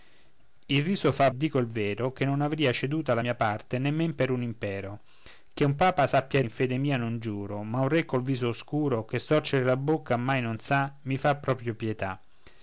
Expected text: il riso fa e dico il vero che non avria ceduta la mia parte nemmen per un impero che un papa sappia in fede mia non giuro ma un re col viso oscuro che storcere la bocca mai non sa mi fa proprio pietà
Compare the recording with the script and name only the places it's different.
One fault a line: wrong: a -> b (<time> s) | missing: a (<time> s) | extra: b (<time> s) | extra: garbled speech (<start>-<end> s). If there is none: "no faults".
no faults